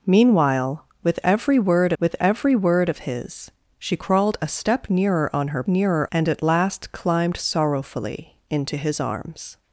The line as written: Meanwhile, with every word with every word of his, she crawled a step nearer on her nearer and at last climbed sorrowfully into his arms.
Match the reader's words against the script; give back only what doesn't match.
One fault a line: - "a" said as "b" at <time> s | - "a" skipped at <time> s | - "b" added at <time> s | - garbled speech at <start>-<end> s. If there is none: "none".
none